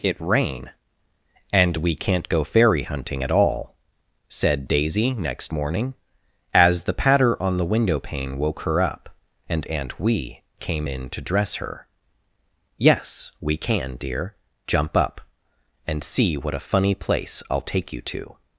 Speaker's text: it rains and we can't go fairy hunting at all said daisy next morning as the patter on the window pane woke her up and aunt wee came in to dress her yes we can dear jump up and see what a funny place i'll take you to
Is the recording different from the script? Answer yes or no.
yes